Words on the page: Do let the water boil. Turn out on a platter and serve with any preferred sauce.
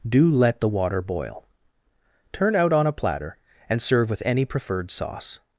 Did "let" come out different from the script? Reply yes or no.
no